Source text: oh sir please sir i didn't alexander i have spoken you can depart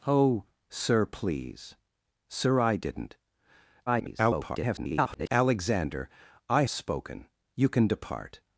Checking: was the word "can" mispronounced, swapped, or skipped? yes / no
no